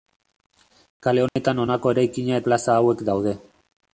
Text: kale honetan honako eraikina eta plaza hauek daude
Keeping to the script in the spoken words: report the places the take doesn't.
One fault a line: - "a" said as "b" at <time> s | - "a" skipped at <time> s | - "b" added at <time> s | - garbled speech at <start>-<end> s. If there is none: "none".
- "eta" skipped at 2.4 s